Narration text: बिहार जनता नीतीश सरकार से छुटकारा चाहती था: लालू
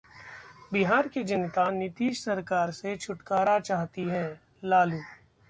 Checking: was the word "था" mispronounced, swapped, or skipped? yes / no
yes